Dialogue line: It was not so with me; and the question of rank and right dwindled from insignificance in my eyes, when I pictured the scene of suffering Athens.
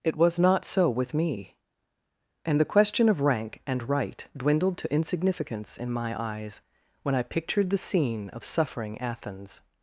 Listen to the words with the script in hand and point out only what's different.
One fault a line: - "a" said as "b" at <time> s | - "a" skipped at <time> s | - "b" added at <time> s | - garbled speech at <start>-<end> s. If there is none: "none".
- "from" said as "to" at 4.8 s